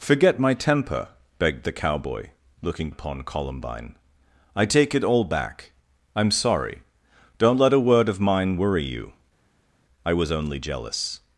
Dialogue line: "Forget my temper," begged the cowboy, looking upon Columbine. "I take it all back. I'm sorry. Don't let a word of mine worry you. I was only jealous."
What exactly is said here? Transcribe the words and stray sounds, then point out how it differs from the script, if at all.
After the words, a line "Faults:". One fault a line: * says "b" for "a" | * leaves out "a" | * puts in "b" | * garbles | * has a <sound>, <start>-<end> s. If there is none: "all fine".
"Forget my temper," begged the cowboy, looking upon Columbine. "I take it all back. I'm sorry. Don't let a word of mine worry you. I was only jealous."
Faults:
all fine